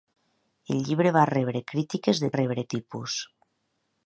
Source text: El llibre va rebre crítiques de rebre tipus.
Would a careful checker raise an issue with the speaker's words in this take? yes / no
no